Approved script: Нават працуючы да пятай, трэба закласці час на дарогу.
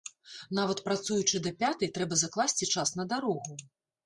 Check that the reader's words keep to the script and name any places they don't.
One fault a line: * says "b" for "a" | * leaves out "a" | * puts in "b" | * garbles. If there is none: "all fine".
all fine